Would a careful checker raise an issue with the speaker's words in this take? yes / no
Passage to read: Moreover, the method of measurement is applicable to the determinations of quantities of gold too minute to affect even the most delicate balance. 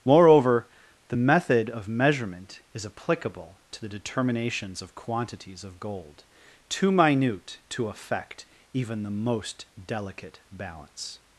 no